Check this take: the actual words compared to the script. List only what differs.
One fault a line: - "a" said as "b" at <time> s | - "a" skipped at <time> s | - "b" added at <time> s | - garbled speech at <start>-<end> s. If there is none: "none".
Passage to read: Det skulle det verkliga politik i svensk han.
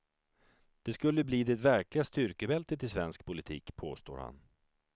- "bli" added at 1.2 s
- "politik" said as "styrkebältet" at 2.0 s
- "politik påstår" added at 3.2 s